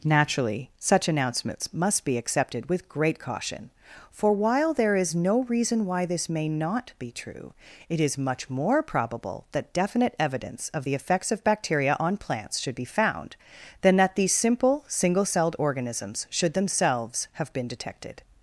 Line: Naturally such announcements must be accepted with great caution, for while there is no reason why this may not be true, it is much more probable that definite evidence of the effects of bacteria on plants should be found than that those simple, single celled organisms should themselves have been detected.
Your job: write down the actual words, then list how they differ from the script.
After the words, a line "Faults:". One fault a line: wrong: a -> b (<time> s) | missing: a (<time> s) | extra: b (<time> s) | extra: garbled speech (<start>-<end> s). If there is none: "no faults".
Naturally such announcements must be accepted with great caution, for while there is no reason why this may not be true, it is much more probable that definite evidence of the effects of bacteria on plants should be found than that these simple, single celled organisms should themselves have been detected.
Faults:
wrong: those -> these (14.1 s)